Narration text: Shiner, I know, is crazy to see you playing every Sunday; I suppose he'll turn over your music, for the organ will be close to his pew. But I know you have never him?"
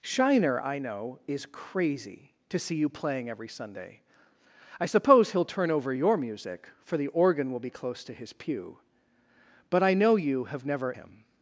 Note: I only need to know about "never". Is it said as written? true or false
true